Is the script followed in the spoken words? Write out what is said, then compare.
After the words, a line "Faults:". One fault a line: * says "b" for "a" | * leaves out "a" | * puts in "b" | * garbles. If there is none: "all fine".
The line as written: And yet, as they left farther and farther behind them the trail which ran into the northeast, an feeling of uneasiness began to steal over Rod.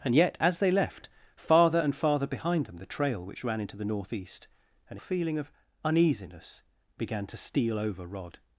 And yet, as they left farther and farther behind them the trail which ran into the northeast, an feeling of uneasiness began to steal over Rod.
Faults:
all fine